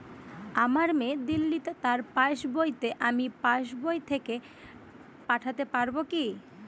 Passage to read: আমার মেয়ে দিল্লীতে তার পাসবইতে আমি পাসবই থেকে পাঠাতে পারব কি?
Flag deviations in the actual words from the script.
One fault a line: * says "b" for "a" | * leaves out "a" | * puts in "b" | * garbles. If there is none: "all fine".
all fine